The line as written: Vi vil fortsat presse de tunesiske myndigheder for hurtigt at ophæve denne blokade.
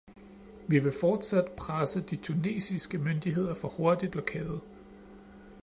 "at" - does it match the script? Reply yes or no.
no